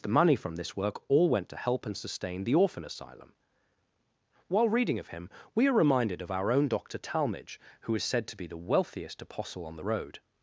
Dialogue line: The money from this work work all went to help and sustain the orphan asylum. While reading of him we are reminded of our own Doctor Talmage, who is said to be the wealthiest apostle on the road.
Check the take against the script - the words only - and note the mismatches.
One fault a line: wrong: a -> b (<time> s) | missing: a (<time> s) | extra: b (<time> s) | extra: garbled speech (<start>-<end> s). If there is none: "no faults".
missing: work (1.0 s)